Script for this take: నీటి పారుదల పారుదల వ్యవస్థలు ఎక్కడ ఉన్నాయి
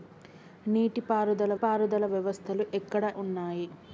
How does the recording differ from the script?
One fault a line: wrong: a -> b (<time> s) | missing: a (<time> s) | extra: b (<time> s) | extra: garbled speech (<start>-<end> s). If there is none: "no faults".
no faults